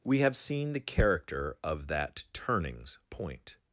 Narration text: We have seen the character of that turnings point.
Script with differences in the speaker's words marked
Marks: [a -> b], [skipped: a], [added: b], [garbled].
We have seen the character of that turnings point.